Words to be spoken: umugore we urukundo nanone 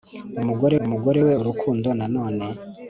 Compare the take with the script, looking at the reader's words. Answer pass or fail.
fail